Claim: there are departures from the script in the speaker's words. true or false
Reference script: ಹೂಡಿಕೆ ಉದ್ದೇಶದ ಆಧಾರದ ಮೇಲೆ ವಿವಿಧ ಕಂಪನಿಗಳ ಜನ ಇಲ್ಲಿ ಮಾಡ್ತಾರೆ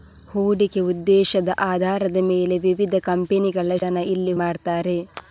false